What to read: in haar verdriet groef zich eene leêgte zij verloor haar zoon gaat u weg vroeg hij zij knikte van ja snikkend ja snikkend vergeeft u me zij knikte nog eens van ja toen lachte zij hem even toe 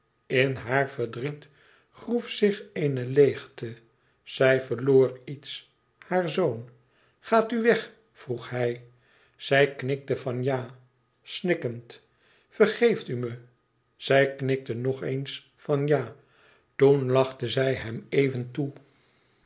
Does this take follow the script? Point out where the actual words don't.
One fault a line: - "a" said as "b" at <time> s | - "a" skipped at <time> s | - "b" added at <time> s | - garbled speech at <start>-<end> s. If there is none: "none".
- "iets" added at 5.2 s
- "ja snikkend" skipped at 12.1 s